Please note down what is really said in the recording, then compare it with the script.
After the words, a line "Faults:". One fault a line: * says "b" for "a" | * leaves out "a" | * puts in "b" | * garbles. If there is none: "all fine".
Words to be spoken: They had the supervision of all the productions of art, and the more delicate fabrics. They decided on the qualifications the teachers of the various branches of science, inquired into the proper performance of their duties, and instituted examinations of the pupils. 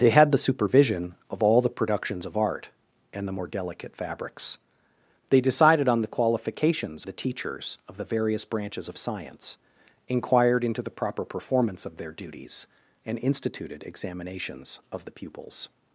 They had the supervision of all the productions of art, and the more delicate fabrics. They decided on the qualifications the teachers of the various branches of science, inquired into the proper performance of their duties, and instituted examinations of the pupils.
Faults:
all fine